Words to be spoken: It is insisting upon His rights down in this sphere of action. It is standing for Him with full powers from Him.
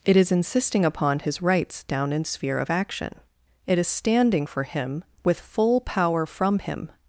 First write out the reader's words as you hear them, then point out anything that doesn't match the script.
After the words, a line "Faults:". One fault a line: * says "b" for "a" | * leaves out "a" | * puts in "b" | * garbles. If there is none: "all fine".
It is insisting upon His rights down in sphere of action. It is standing for Him with full power from Him.
Faults:
* leaves out "this"
* says "power" for "powers"